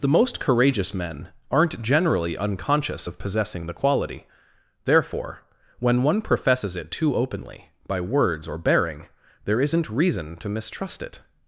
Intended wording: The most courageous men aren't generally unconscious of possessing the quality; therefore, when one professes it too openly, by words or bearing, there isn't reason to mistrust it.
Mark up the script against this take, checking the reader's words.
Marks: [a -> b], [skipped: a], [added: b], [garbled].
The most courageous men aren't generally unconscious of possessing the quality; therefore, when one professes it too openly, by words or bearing, there isn't reason to mistrust it.